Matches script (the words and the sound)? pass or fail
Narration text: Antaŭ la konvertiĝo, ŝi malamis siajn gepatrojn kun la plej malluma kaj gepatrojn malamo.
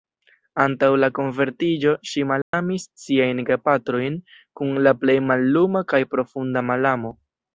fail